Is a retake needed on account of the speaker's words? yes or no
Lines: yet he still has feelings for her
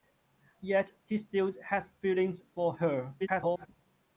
yes